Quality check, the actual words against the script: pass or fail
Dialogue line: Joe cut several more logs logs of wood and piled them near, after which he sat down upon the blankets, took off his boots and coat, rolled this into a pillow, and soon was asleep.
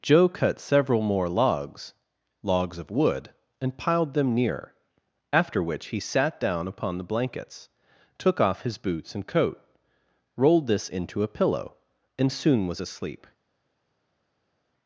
pass